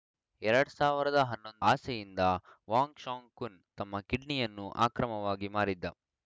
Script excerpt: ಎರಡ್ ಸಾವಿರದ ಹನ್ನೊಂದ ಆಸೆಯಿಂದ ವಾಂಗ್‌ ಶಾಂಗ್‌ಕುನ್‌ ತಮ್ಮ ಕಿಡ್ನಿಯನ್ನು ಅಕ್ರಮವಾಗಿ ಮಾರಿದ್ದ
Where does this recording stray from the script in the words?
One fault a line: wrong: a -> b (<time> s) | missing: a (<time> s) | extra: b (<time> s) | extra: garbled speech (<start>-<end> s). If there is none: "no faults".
no faults